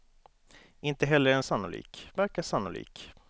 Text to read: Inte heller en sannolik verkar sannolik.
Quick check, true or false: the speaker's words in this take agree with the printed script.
true